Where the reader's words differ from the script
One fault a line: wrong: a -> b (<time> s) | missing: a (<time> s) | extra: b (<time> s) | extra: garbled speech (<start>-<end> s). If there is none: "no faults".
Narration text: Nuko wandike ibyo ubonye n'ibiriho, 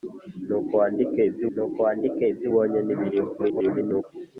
extra: nuko wandike ibyo (1.5 s)
extra: garbled speech (3.4-4.0 s)